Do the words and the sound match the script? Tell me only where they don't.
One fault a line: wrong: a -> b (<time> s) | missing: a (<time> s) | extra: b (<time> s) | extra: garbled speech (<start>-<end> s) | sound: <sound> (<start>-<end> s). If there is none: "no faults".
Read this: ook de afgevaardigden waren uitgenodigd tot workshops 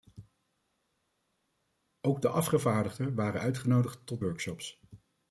no faults